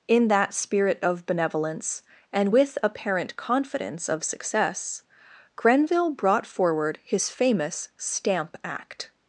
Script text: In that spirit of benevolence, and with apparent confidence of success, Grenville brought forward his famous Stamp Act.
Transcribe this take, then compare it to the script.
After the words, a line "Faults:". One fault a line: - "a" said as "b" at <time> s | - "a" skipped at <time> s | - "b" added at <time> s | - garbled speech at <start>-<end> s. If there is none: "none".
In that spirit of benevolence, and with apparent confidence of success, Grenville brought forward his famous Stamp Act.
Faults:
none